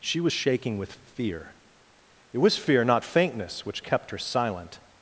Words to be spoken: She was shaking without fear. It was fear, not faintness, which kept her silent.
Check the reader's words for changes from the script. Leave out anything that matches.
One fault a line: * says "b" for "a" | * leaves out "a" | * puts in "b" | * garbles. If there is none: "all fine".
* says "with" for "without"